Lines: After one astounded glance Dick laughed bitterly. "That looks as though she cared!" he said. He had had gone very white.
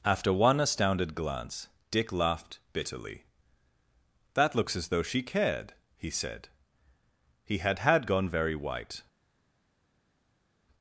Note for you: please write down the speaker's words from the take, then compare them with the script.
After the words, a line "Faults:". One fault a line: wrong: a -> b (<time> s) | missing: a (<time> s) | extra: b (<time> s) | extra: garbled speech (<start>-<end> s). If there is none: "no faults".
After one astounded glance Dick laughed bitterly. "That looks as though she cared!" he said. He had had gone very white.
Faults:
no faults